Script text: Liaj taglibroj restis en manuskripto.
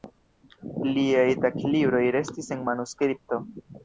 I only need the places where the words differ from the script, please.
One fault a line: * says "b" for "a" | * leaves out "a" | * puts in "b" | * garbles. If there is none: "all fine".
all fine